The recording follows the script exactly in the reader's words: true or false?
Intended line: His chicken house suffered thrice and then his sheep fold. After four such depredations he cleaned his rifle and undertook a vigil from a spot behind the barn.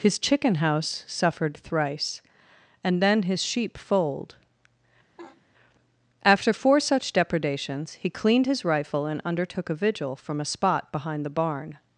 true